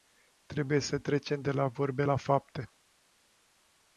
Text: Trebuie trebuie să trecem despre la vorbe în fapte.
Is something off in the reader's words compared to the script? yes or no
yes